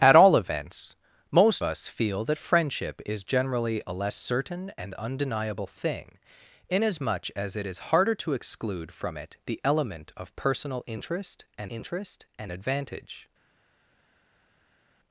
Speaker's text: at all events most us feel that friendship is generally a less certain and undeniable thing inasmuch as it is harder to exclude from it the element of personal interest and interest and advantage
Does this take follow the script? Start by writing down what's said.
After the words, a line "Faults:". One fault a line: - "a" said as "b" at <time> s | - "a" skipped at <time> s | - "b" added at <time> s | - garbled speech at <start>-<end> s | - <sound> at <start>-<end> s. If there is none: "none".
at all events most us feel that friendship is generally a less certain and undeniable thing inasmuch as it is harder to exclude from it the element of personal interest and interest and advantage
Faults:
none